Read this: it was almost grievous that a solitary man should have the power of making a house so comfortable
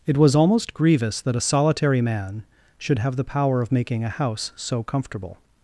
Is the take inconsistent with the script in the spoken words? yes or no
no